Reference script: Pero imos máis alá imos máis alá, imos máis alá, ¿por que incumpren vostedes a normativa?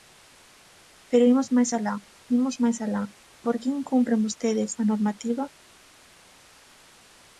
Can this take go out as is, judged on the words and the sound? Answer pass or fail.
fail